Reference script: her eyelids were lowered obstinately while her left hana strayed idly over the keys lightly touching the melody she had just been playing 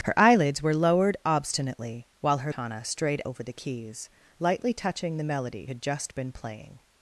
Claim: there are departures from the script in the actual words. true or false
true